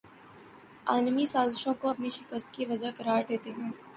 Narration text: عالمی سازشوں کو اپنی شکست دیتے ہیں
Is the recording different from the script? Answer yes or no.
yes